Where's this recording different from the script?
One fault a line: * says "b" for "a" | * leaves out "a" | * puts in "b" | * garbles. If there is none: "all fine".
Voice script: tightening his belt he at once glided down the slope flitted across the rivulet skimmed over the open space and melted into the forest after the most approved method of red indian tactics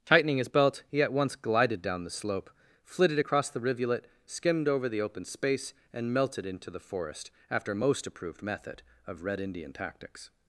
* leaves out "the"